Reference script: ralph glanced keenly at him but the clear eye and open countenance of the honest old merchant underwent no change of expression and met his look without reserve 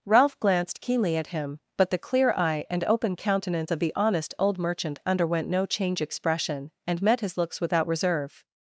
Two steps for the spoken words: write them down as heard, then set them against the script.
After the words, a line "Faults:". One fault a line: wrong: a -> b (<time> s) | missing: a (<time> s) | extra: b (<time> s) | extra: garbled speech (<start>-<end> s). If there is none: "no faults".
ralph glanced keenly at him but the clear eye and open countenance of the honest old merchant underwent no change expression and met his looks without reserve
Faults:
missing: of (6.0 s)
wrong: look -> looks (7.4 s)